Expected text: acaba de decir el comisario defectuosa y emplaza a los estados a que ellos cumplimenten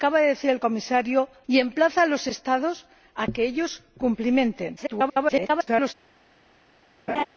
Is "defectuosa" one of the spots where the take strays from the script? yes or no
yes